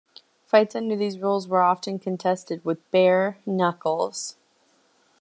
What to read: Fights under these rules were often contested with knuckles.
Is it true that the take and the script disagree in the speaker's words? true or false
true